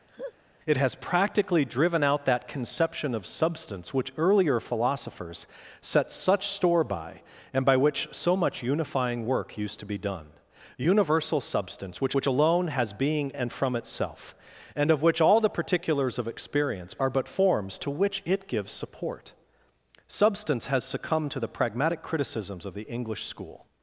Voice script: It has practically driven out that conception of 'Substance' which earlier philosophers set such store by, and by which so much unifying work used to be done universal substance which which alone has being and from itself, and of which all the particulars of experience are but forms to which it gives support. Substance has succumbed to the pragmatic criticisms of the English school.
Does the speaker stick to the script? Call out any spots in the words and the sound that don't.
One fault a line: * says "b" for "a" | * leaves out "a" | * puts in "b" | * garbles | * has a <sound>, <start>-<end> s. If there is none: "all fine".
* has a laugh, 0.1-0.3 s